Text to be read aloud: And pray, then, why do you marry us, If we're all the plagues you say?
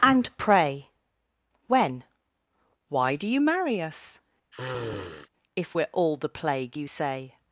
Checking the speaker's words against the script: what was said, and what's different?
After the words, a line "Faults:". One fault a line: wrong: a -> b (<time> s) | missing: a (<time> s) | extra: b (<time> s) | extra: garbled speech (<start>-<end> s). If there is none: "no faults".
And pray, when, why do you marry us, If we're all the plague you say?
Faults:
wrong: then -> when (1.7 s)
wrong: plagues -> plague (6.3 s)